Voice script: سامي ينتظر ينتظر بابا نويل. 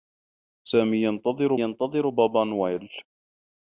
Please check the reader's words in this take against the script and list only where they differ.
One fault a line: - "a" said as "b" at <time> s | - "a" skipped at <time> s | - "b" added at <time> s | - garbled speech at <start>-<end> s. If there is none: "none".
none